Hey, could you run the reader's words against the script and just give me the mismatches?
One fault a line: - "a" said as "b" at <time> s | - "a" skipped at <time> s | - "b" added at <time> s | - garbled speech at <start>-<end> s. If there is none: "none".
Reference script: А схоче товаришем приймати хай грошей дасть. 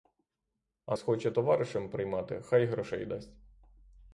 none